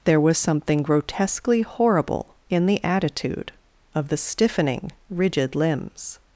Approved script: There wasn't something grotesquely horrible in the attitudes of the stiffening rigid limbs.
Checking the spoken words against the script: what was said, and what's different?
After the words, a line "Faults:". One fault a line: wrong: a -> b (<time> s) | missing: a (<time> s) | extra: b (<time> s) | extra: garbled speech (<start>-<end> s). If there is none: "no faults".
There was something grotesquely horrible in the attitude of the stiffening rigid limbs.
Faults:
wrong: wasn't -> was (0.2 s)
wrong: attitudes -> attitude (2.8 s)